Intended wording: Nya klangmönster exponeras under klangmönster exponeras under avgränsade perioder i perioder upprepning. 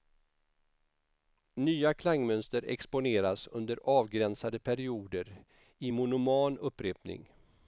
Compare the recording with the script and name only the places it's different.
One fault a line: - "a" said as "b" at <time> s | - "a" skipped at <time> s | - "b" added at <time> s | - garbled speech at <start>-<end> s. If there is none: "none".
- "klangmönster exponeras under" skipped at 3.8 s
- "perioder" said as "monoman" at 5.9 s